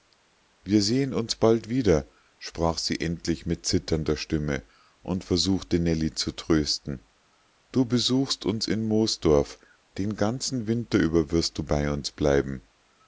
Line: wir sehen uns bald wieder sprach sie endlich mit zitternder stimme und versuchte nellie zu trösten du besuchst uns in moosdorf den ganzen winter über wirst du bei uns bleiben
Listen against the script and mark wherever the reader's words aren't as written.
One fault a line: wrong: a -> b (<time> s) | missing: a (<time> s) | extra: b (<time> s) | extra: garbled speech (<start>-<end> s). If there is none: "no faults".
no faults